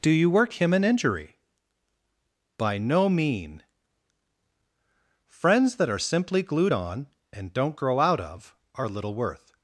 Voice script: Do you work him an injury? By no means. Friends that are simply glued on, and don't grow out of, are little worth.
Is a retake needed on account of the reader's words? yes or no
yes